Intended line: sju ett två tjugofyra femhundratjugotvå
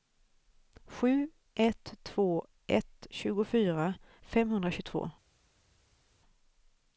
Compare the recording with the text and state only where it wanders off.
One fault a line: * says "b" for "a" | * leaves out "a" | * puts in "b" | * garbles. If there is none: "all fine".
* puts in "ett"